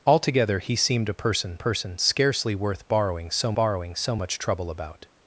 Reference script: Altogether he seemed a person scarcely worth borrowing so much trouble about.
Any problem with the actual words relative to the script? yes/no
yes